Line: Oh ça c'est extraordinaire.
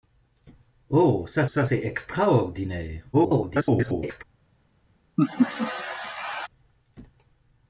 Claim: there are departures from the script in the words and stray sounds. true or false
true